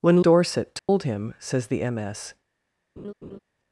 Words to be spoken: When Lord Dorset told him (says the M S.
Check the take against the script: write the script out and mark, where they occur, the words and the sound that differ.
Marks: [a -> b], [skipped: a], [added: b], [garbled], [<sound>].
When [skipped: Lord] Dorset told [dropout] him (says the M S. [laugh]